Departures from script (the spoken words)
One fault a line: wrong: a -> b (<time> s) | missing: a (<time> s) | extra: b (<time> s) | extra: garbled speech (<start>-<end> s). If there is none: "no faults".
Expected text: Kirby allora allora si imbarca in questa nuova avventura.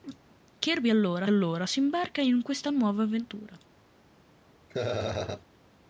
no faults